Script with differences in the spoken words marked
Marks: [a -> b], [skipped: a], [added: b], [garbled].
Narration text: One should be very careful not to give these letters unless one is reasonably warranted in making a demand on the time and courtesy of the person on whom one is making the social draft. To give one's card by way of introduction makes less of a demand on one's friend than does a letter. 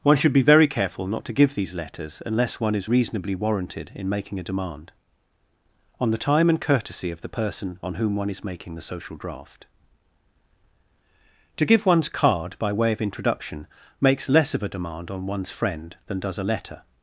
One should be very careful not to give these letters unless one is reasonably warranted in making a demand on the time and courtesy of the person on whom one is making the social draft. To give one's card by way of introduction makes less of a demand on one's friend than does a letter.